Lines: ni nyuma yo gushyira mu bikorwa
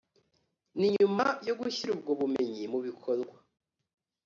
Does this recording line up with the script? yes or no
no